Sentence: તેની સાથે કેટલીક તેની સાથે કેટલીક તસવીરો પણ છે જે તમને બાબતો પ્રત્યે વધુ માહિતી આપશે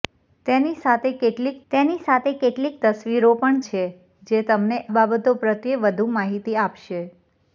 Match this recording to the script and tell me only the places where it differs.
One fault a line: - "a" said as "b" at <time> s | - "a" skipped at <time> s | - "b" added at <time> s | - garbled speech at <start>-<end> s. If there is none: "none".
none